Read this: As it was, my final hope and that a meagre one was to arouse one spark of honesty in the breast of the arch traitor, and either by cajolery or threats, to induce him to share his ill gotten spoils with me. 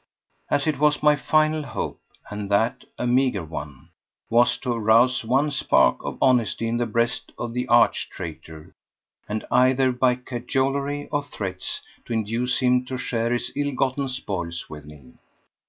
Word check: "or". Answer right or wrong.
right